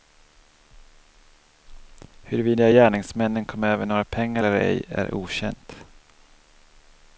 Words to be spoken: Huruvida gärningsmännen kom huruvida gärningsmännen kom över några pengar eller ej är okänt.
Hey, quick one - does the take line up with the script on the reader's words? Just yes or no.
no